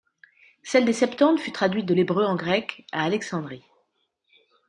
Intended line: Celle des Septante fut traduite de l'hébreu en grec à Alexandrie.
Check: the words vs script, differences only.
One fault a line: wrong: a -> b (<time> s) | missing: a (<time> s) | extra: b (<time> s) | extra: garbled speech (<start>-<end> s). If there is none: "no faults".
no faults